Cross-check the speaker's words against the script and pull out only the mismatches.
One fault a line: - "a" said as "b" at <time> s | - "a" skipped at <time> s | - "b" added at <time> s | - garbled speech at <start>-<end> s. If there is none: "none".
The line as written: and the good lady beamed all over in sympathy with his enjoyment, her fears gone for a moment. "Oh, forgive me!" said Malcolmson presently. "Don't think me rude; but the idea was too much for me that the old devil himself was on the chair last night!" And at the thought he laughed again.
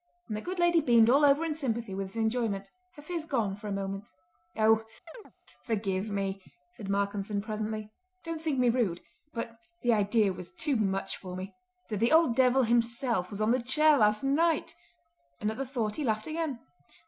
none